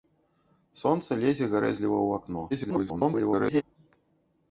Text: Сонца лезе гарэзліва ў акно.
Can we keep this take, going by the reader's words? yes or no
no